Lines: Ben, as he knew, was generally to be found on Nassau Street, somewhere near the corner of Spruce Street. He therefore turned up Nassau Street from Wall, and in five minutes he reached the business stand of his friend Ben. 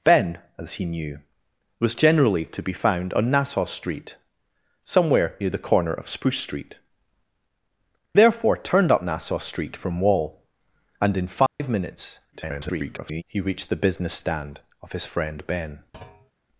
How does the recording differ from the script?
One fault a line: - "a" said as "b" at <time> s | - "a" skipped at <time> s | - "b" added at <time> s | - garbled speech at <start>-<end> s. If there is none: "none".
- "He" skipped at 6.8 s
- garbled speech at 12.3-13.2 s